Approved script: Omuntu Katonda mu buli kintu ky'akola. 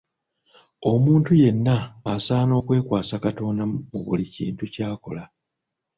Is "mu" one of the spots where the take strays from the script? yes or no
no